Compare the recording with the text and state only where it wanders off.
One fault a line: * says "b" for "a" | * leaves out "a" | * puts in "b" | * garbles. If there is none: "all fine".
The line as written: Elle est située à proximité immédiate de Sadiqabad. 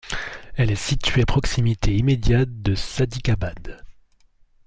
all fine